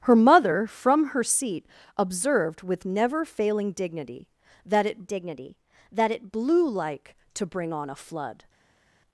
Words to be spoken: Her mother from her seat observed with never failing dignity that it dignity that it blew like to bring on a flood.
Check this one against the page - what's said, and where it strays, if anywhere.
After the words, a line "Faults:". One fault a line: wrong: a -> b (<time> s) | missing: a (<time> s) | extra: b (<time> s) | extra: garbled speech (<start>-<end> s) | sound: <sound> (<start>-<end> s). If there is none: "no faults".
Her mother from her seat observed with never failing dignity that it dignity that it blew like to bring on a flood.
Faults:
no faults